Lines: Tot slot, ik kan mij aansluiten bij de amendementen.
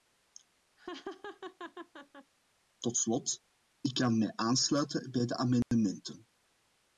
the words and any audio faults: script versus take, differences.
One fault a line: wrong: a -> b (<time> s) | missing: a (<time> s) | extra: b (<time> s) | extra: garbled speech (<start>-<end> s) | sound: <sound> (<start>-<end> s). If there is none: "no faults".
sound: laugh (0.8-2.3 s)
sound: dropout (5.6-5.7 s)